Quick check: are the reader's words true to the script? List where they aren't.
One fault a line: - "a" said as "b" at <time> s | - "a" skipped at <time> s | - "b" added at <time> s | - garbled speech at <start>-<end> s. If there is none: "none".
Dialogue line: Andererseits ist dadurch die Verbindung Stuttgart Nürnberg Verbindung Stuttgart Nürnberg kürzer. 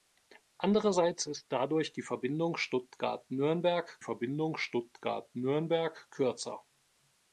none